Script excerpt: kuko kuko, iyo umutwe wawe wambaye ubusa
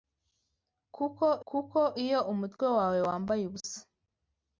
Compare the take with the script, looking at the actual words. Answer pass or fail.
pass